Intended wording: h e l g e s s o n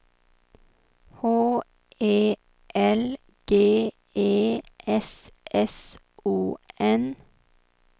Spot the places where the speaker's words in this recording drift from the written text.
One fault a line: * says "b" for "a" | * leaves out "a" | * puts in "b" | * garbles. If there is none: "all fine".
all fine